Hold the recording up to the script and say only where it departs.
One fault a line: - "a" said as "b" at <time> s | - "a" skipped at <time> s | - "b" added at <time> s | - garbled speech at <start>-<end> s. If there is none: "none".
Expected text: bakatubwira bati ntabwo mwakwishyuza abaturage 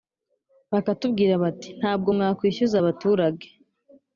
none